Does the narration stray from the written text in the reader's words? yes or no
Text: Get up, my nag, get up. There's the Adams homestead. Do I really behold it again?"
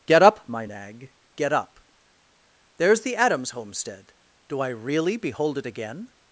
no